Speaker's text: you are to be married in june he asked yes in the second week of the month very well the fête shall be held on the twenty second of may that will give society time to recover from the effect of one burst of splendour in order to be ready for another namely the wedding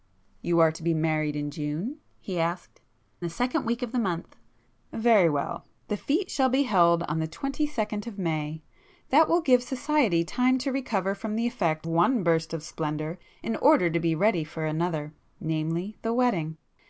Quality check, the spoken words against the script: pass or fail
fail